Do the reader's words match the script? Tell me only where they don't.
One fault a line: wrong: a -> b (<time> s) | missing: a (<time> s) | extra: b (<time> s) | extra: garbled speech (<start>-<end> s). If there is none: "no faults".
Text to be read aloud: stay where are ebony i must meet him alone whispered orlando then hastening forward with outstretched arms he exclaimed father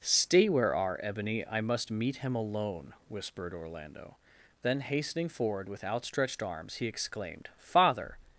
no faults